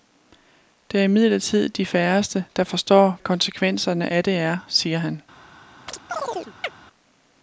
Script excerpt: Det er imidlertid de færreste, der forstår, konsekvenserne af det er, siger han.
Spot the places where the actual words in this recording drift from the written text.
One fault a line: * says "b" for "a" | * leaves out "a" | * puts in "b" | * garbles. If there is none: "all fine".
all fine